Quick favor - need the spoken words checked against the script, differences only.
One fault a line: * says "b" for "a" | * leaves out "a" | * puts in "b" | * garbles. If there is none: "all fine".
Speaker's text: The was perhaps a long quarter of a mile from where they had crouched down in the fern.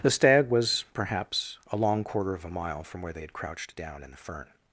* puts in "stag"